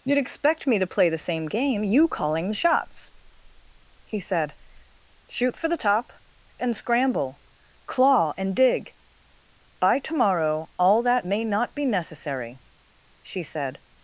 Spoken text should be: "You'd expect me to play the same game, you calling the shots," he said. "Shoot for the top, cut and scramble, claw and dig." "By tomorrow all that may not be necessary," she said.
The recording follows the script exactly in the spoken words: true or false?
false